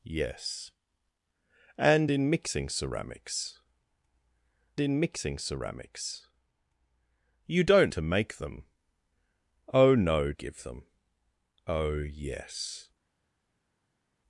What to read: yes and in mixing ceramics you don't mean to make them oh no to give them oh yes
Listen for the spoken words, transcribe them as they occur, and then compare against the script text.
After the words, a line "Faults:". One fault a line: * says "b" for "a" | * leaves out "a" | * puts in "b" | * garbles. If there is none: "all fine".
yes and in mixing ceramics in mixing ceramics you don't to make them oh no give them oh yes
Faults:
* puts in "in mixing ceramics"
* leaves out "mean"
* leaves out "to"